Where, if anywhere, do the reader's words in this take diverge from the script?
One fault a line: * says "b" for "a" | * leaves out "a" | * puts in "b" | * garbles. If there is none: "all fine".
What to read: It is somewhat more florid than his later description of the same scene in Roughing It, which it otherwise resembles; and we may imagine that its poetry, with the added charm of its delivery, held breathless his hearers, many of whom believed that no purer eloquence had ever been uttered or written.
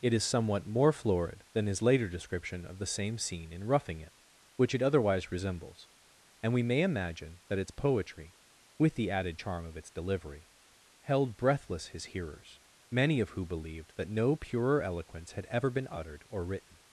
* says "who" for "whom"